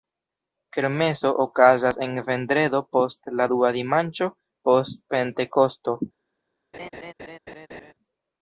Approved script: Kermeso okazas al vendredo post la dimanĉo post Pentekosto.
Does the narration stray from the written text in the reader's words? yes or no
yes